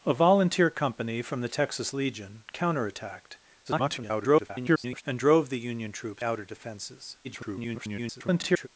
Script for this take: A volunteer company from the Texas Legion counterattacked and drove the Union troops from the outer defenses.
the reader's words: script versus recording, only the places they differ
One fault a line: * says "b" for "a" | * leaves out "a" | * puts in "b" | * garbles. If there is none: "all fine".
* garbles
* leaves out "from the"
* garbles